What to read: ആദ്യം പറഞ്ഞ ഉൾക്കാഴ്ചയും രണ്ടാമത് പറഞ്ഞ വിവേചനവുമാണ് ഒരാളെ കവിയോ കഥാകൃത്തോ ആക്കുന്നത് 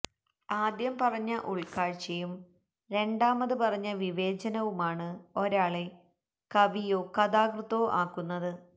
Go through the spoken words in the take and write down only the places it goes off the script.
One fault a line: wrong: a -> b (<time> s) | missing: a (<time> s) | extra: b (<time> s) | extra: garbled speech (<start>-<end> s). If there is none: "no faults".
no faults